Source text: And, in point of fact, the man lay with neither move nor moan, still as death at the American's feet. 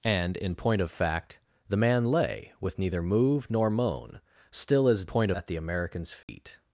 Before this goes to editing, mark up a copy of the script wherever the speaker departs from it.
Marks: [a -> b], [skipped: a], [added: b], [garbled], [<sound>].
And, in point of fact, the man lay with neither move nor moan, still as [death -> point] at the American's feet. [dropout]